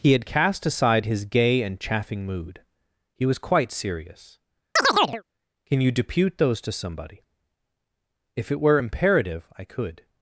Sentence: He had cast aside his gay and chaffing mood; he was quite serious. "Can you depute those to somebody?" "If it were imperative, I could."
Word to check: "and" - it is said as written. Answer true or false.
true